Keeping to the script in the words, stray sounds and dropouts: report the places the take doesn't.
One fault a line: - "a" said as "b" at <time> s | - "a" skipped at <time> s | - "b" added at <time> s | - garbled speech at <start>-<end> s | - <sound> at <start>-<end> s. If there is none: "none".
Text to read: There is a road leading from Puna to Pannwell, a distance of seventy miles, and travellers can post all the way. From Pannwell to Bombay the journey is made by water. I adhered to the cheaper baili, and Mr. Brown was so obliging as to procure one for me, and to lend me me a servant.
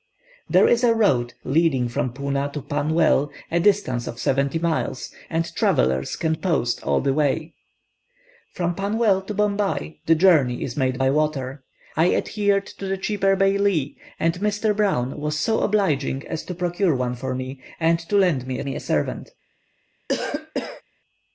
- cough at 20.1-20.8 s